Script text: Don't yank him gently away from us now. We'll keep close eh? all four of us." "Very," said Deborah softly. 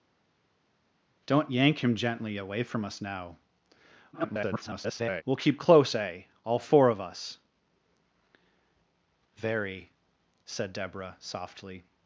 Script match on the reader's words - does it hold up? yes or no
no